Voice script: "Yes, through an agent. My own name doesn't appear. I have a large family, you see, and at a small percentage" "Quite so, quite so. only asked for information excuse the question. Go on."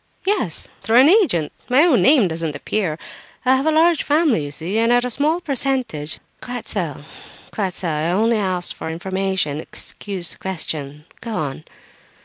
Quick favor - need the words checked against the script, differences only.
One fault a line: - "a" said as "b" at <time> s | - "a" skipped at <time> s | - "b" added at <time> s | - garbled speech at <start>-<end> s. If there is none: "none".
- "I" added at 7.9 s